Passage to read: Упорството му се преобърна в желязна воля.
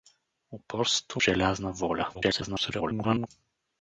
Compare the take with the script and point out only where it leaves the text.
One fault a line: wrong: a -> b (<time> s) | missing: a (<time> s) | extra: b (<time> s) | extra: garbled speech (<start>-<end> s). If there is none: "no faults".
missing: му се преобърна (1.2 s)
extra: garbled speech (2.1-3.3 s)